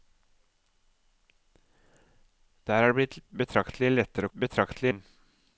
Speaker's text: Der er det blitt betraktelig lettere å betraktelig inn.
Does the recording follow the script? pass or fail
pass